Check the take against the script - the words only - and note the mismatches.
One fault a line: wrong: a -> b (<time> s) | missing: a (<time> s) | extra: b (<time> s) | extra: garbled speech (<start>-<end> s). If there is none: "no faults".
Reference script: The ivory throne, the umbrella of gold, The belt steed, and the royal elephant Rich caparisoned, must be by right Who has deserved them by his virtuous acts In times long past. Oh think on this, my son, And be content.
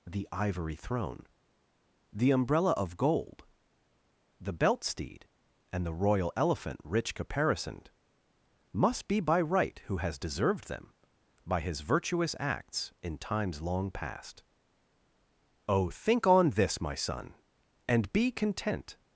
no faults